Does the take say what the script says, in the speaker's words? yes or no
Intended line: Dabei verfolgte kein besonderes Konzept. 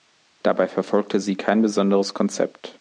no